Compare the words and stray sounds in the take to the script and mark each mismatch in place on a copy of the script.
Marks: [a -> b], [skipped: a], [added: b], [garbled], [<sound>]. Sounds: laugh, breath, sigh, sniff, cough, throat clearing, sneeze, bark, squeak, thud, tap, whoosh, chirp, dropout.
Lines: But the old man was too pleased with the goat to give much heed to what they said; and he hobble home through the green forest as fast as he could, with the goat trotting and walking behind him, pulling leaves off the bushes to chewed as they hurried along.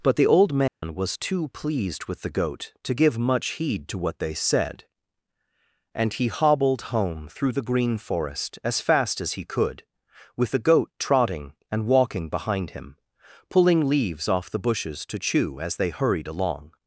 But the old man [dropout] was too pleased with the goat to give much heed to what they said; and he [hobble -> hobbled] home through the green forest as fast as he could, with the goat trotting and walking behind him, pulling leaves off the bushes to [chewed -> chew] as they hurried along.